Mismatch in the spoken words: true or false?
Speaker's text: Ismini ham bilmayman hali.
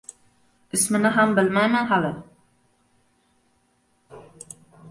false